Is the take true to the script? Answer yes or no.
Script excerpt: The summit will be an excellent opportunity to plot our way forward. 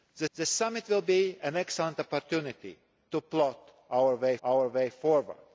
no